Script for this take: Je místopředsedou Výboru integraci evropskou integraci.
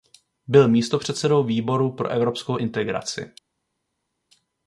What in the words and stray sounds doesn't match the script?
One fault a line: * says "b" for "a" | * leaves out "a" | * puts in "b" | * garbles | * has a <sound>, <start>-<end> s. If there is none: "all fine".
* says "Byl" for "Je"
* says "pro" for "integraci"